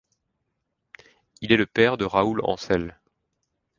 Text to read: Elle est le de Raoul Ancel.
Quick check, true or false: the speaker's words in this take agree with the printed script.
false